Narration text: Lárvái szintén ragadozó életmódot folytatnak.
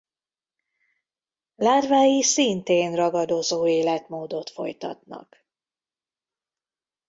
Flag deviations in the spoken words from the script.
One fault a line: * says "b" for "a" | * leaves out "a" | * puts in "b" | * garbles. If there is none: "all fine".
all fine